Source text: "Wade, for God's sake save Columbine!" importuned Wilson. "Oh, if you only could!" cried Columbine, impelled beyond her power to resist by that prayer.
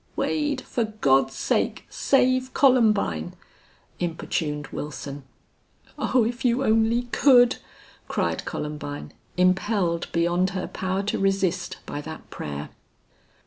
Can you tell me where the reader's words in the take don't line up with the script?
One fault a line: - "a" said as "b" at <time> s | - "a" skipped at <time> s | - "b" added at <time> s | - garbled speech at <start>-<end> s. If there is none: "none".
none